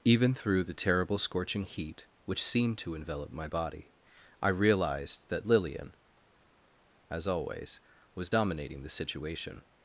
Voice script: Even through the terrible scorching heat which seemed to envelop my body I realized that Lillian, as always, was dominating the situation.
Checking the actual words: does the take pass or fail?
pass